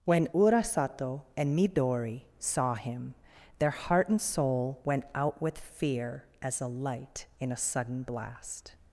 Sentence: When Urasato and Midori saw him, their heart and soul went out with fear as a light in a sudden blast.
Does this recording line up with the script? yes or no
yes